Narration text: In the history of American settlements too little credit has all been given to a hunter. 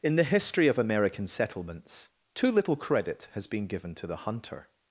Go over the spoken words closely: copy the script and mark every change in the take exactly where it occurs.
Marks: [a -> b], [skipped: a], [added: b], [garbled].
In the history of American settlements too little credit has [skipped: all] been given to [a -> the] hunter.